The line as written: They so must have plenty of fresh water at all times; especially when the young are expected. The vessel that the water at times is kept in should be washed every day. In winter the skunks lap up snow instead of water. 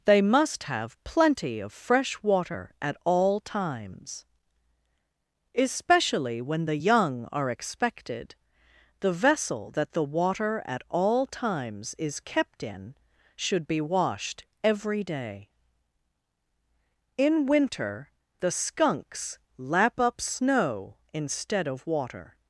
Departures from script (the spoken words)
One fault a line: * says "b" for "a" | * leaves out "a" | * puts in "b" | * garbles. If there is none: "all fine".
* leaves out "so"
* puts in "all"